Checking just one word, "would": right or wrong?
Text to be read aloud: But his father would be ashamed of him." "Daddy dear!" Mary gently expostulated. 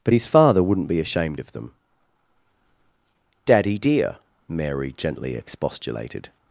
wrong